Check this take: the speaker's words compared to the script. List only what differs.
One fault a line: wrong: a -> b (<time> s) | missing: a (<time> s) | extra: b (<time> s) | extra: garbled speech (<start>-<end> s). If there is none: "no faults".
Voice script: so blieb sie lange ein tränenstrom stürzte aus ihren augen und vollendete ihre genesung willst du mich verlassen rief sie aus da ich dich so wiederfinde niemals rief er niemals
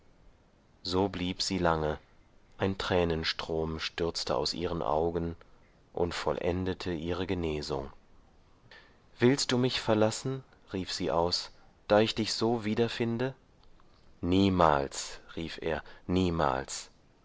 no faults